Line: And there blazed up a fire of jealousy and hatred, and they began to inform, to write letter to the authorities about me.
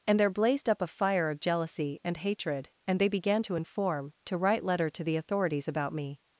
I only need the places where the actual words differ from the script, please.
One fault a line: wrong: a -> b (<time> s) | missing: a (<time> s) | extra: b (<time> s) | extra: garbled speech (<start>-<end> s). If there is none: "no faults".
no faults